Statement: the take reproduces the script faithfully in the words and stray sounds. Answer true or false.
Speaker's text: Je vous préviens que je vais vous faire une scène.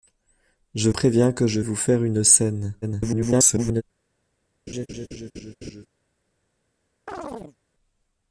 false